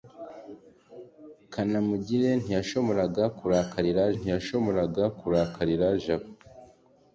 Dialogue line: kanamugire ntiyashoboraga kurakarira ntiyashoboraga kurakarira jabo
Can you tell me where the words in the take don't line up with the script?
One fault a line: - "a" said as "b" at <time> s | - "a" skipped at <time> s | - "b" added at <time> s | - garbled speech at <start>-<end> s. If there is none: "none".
none